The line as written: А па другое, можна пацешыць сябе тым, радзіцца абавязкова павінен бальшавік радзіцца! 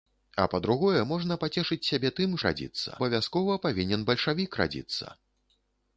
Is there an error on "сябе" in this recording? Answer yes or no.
no